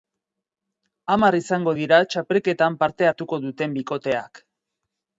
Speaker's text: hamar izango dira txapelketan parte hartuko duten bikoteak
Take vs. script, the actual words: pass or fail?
pass